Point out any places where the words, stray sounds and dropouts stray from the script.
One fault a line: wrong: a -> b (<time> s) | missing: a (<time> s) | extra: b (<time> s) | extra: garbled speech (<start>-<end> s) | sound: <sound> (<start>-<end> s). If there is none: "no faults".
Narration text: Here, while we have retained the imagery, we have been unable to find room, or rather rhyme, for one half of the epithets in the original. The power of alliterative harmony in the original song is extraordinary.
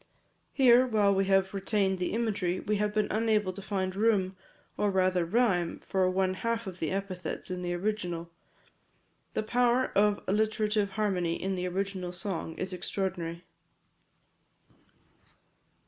no faults